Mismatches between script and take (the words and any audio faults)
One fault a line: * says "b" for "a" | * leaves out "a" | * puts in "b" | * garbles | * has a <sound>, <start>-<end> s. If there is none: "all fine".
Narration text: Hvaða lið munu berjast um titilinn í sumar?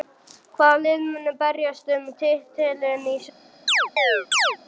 * has a chirp, 3.7-4.6 s